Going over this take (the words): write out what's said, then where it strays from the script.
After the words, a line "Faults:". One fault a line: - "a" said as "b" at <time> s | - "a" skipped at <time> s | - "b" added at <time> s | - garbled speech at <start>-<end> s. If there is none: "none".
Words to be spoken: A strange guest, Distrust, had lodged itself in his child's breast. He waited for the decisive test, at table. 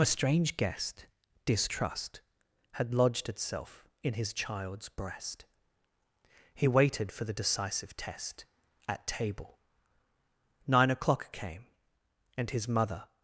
A strange guest, Distrust, had lodged itself in his child's breast. He waited for the decisive test, at table. Nine o'clock came, and his mother
Faults:
- "Nine o'clock came and his mother" added at 10.7 s